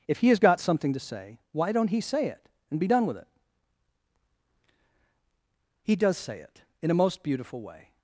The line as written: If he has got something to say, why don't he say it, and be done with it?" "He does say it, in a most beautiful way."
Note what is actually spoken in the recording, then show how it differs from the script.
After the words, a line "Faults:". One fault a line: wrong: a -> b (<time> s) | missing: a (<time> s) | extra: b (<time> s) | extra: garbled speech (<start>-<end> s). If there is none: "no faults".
If he has got something to say, why don't he say it, and be done with it?" "He does say it, in a most beautiful way."
Faults:
no faults